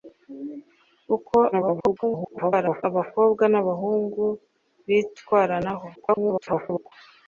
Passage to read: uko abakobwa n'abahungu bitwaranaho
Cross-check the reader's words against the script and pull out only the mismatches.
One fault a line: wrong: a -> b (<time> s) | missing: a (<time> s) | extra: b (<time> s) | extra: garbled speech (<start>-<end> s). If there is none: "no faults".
extra: garbled speech (1.5-2.8 s)
extra: garbled speech (5.9-6.9 s)